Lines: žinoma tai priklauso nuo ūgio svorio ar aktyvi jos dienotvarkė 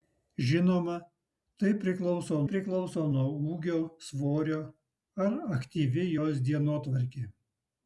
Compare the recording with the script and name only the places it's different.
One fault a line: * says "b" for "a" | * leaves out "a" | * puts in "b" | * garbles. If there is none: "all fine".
* puts in "priklauso"